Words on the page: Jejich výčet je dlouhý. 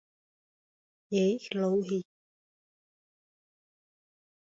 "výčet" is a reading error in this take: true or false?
true